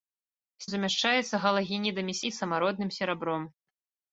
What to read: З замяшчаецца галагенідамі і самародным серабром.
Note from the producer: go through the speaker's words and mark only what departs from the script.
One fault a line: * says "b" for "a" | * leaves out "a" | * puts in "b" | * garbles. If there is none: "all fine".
all fine